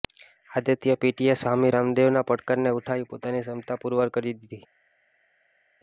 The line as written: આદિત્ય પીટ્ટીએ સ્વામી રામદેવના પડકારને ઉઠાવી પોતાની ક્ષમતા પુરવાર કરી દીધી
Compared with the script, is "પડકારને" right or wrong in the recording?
right